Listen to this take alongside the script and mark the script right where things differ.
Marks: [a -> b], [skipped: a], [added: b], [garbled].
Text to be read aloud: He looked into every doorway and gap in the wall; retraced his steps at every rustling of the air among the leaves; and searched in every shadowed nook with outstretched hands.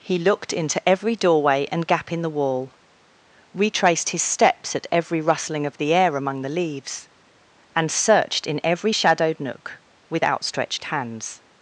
He looked into every doorway and gap in the wall; retraced his steps at every rustling of the air among the leaves; and searched in every shadowed nook with outstretched hands.